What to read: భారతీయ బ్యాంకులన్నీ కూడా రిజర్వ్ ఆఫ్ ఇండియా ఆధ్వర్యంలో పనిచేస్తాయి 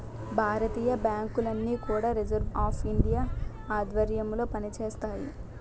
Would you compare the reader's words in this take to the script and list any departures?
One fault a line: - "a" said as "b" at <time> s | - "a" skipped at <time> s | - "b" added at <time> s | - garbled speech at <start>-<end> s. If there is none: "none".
none